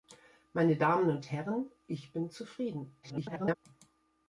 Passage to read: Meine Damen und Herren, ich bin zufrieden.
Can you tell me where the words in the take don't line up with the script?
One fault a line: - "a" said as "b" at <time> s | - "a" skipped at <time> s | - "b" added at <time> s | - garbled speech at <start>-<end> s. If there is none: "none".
- garbled speech at 3.0-3.6 s